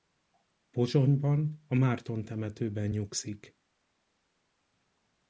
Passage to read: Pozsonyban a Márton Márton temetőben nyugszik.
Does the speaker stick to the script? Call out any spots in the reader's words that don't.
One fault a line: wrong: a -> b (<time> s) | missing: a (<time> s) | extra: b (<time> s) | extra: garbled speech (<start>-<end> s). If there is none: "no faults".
missing: Márton (2.2 s)